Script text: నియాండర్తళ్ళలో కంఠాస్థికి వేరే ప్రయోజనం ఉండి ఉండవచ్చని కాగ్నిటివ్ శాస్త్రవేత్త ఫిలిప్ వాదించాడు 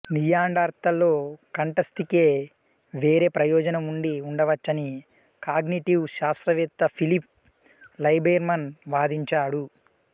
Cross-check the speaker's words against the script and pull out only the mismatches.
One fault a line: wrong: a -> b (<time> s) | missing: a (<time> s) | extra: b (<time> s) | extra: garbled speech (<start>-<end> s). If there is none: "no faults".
extra: లైబెర్మాన్ (8.0 s)